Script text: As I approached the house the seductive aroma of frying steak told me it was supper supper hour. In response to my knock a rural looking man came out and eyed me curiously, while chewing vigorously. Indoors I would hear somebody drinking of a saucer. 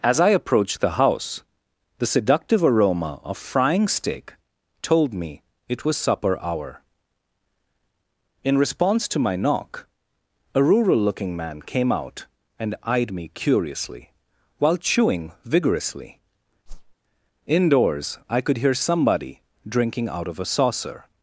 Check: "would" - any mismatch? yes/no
yes